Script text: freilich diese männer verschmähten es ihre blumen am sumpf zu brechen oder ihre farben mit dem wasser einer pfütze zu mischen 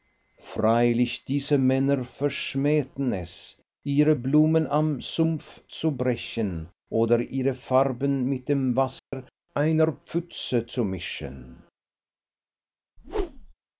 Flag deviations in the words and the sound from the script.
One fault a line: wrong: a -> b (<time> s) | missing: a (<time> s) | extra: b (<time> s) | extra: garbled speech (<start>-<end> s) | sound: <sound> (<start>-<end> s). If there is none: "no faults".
sound: dropout (9.0-9.1 s)
sound: whoosh (13.0-13.5 s)